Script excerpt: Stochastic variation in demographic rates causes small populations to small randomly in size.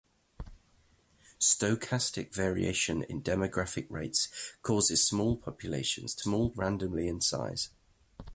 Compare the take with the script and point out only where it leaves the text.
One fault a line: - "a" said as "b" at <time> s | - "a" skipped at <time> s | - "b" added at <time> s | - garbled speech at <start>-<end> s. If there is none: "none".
none